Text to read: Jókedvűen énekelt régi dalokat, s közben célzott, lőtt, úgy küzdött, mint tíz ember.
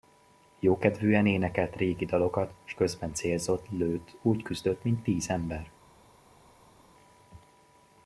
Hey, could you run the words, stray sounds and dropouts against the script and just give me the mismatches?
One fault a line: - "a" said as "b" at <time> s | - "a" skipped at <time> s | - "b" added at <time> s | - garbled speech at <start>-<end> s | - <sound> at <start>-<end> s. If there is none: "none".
none